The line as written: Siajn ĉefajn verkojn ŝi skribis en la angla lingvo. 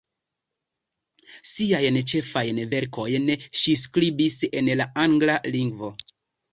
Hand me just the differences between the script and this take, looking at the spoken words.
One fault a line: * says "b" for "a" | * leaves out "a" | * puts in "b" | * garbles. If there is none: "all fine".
all fine